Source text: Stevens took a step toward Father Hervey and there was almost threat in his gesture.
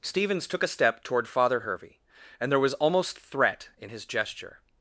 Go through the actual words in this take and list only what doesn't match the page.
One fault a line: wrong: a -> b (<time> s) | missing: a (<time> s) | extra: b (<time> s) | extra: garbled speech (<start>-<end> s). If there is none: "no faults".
no faults